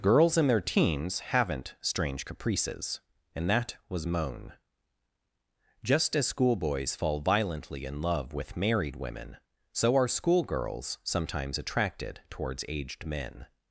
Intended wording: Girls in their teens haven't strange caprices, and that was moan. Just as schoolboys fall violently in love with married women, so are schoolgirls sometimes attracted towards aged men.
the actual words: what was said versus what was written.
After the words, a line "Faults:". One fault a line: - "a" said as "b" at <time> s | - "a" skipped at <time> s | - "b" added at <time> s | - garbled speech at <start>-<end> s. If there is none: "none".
Girls in their teens haven't strange caprices, and that was moan. Just as schoolboys fall violently in love with married women, so are schoolgirls sometimes attracted towards aged men.
Faults:
none